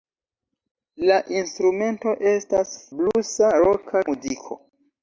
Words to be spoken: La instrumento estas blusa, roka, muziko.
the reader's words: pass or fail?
pass